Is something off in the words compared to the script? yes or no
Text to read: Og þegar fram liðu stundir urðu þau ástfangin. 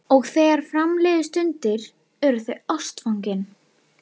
no